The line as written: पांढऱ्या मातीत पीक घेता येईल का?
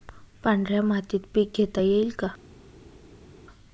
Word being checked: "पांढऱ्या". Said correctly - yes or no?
yes